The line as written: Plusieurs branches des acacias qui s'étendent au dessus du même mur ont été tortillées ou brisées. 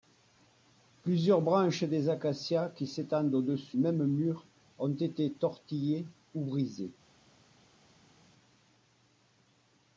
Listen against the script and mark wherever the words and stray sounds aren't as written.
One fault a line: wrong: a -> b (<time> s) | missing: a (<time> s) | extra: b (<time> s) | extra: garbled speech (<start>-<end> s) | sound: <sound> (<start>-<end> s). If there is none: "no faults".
missing: du (3.8 s)